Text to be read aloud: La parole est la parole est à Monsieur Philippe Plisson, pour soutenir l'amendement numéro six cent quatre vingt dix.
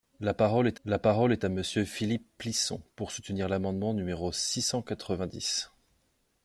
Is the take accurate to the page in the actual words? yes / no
yes